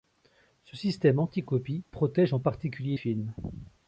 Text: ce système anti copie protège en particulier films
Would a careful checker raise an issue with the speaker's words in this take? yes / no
no